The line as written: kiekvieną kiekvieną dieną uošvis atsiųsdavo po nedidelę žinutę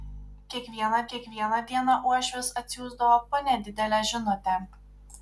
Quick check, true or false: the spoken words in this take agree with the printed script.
true